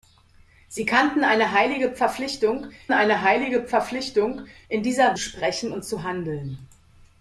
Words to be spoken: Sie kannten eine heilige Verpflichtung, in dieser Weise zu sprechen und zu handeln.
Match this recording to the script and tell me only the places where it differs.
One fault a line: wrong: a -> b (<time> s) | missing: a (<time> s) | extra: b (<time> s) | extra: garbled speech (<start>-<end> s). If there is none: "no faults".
extra: eine heilige Verpflichtung (2.9 s)
missing: Weise zu (5.1 s)